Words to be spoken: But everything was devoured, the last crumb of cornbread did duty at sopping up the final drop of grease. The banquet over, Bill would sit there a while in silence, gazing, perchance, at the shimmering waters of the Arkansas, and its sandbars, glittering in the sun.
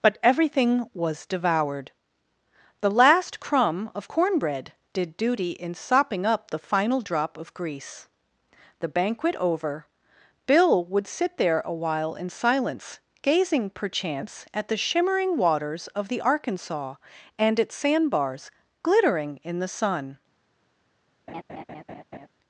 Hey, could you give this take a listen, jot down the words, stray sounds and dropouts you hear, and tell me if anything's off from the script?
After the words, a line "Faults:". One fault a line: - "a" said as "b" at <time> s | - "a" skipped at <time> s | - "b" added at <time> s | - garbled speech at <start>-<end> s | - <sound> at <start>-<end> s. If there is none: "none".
But everything was devoured, the last crumb of cornbread did duty in sopping up the final drop of grease. The banquet over, Bill would sit there a while in silence, gazing, perchance, at the shimmering waters of the Arkansas, and its sandbars, glittering in the sun.
Faults:
- "at" said as "in" at 5.5 s
- laugh at 21.3-22.3 s